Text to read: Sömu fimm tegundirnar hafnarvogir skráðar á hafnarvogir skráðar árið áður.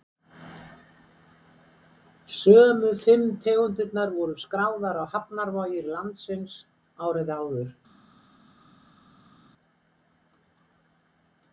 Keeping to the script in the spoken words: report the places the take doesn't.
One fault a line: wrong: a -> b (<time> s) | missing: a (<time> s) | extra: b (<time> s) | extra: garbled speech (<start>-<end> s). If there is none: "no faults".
wrong: hafnarvogir -> voru (4.2 s)
wrong: skráðar -> landsins (6.0 s)